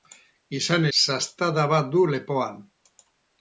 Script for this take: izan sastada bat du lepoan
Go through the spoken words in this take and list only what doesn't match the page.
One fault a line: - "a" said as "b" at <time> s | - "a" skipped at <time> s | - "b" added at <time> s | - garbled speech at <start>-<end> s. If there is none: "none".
none